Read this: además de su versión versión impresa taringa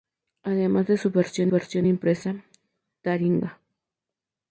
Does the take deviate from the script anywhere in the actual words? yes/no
no